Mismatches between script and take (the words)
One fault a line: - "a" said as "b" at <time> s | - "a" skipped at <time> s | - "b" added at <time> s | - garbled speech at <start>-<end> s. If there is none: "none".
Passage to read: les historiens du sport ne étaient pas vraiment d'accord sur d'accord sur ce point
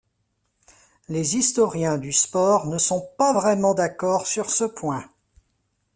- "étaient" said as "sont" at 2.8 s
- "d'accord sur" skipped at 4.5 s